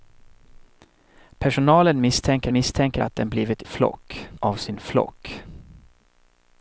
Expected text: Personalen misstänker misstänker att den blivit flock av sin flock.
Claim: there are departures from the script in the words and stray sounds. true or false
false